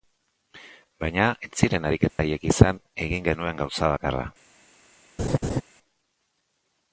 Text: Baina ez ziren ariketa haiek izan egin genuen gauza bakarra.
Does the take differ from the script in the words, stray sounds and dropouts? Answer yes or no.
yes